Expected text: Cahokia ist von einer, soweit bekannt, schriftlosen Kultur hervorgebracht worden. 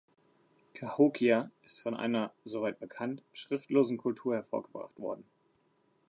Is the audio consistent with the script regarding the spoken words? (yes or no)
yes